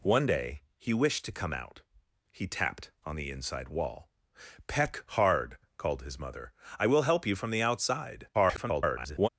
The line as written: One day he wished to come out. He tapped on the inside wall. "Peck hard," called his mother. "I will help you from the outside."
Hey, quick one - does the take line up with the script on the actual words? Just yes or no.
no